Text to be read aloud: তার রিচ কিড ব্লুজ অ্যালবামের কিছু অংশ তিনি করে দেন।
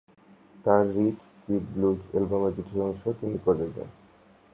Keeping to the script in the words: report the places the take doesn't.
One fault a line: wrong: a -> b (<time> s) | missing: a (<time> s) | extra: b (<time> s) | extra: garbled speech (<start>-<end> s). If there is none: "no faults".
no faults